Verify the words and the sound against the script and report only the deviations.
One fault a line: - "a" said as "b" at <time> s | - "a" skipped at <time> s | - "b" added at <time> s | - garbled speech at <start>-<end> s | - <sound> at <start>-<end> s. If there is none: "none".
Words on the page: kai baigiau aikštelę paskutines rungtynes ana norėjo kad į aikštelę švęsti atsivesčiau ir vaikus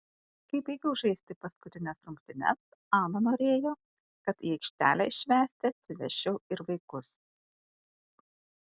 - "aikštelę" said as "žaisti" at 1.0 s